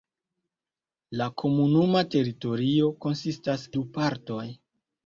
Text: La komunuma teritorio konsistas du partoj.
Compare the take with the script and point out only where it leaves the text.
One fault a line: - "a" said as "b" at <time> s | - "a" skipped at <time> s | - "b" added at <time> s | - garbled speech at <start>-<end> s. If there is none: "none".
none